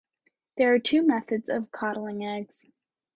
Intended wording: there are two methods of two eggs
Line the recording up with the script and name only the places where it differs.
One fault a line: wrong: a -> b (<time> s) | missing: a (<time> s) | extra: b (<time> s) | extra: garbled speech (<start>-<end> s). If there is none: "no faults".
wrong: two -> coddling (1.7 s)